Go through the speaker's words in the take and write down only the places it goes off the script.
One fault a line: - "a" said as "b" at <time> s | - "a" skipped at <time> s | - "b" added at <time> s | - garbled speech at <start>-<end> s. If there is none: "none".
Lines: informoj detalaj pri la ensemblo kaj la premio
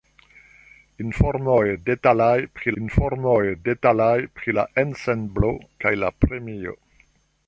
- "informoj detalaj pri" added at 2.8 s